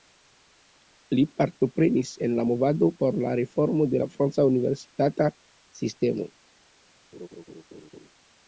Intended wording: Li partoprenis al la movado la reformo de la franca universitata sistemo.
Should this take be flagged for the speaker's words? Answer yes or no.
yes